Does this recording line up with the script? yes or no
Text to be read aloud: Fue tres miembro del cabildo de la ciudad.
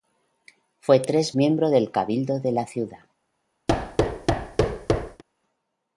yes